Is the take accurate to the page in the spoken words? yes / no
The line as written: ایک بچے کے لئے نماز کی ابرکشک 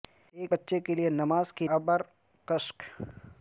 yes